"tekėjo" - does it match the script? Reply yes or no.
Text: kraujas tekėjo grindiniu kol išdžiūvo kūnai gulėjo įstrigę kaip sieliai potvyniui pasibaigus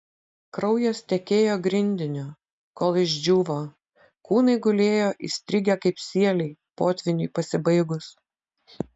yes